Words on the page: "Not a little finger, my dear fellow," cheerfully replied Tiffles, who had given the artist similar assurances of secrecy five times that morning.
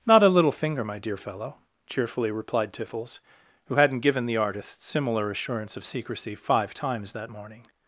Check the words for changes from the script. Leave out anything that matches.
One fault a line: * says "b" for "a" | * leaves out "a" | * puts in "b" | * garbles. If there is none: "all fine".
* says "hadn't" for "had"
* says "assurance" for "assurances"